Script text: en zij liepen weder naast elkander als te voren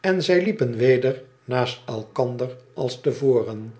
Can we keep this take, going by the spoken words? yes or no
yes